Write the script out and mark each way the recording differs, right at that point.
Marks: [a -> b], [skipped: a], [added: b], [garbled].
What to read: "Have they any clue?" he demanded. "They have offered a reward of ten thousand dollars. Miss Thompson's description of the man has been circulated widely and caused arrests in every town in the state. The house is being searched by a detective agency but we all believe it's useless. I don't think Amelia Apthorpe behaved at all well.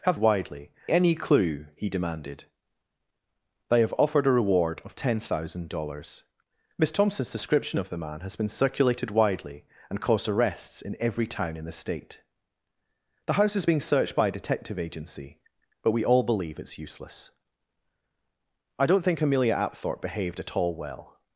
"Have [they -> widely] any clue?" he demanded. "They have offered a reward of ten thousand dollars. Miss Thompson's description of the man has been circulated widely and caused arrests in every town in the state. The house is being searched by a detective agency but we all believe it's useless. I don't think Amelia Apthorpe behaved at all well.